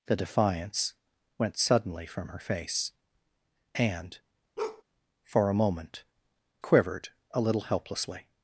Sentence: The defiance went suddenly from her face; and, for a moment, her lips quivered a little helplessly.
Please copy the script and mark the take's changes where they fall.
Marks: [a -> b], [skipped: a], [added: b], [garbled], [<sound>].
The defiance went suddenly from her face; and, [bark] for a moment, [skipped: her lips] quivered a little helplessly.